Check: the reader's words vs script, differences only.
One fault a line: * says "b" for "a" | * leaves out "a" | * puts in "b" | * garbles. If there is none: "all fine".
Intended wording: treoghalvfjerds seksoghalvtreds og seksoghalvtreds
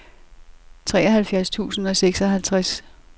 * says "tusind" for "seksoghalvtreds"